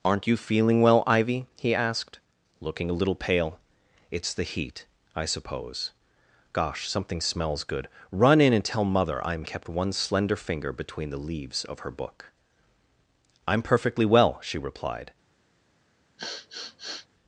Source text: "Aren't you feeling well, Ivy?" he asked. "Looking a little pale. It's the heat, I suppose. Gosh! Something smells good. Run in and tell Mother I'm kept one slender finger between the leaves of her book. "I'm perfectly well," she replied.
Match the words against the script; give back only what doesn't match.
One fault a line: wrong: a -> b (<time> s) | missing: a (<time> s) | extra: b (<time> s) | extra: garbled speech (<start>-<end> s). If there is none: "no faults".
no faults